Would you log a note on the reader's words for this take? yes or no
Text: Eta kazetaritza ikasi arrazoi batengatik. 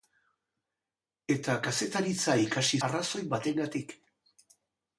no